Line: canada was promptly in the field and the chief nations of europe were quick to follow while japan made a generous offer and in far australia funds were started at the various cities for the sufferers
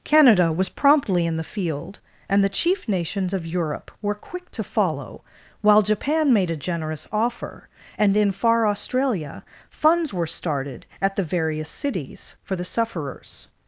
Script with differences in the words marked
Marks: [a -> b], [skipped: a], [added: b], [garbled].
canada was promptly in the field and the chief nations of europe were quick to follow while japan made a generous offer and in far australia funds were started at the various cities for the sufferers